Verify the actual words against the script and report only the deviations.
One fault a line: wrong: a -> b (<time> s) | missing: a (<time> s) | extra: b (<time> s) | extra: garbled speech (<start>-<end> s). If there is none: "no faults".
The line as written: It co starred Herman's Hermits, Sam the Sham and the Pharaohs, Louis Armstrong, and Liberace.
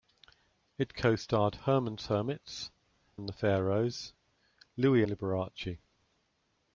missing: Sam the Sham (2.7 s)
missing: Armstrong and (5.0 s)